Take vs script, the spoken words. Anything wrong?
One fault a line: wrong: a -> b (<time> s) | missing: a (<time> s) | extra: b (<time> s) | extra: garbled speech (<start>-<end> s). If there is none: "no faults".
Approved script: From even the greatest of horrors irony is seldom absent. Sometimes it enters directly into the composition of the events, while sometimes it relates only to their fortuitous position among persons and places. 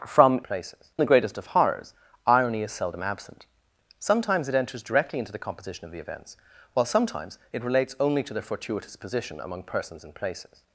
wrong: even -> places (0.4 s)